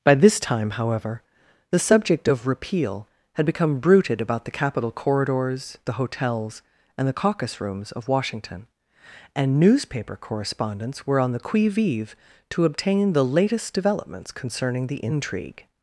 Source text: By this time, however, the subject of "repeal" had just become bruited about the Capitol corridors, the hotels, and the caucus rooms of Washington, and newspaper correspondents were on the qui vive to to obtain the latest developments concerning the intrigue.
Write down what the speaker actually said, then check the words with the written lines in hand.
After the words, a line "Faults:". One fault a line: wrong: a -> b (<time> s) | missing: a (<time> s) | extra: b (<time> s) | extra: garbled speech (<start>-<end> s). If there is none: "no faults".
By this time, however, the subject of "repeal" had become bruited about the Capitol corridors, the hotels, and the caucus rooms of Washington, and newspaper correspondents were on the qui vive to obtain the latest developments concerning the intrigue.
Faults:
missing: just (3.4 s)
missing: to (12.6 s)